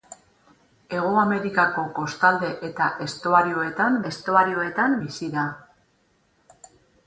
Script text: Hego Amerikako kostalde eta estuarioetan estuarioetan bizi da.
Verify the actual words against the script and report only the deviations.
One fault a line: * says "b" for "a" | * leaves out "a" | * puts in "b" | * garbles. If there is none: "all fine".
all fine